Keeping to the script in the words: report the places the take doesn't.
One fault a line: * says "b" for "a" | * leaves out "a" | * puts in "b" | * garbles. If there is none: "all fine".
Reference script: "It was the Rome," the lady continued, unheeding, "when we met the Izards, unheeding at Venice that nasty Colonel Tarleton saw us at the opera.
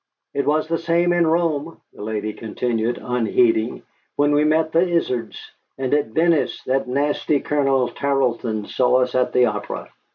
* puts in "same in"
* says "and" for "unheeding"